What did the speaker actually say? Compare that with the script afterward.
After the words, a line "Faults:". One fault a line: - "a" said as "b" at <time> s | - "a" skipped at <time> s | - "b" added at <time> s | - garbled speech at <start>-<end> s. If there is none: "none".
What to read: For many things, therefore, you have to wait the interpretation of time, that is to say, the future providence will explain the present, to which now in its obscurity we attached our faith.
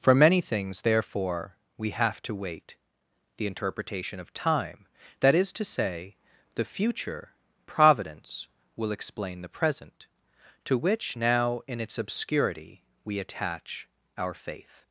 For many things, therefore, we have to wait the interpretation of time, that is to say, the future providence will explain the present, to which now in its obscurity we attach our faith.
Faults:
- "you" said as "we" at 1.8 s
- "attached" said as "attach" at 13.2 s